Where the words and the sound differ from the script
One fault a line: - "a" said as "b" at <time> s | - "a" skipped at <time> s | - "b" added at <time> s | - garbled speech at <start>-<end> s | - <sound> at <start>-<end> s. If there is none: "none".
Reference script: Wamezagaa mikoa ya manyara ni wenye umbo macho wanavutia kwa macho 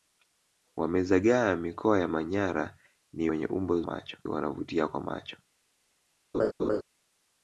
- laugh at 6.3-6.8 s